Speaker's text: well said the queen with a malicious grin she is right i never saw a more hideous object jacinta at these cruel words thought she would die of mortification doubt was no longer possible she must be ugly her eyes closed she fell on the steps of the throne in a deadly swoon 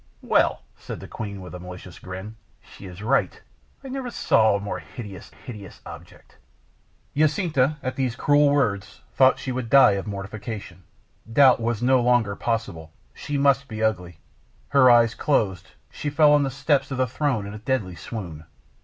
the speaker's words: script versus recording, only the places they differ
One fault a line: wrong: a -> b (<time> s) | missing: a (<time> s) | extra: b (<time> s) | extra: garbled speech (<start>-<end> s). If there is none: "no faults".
extra: hideous (5.3 s)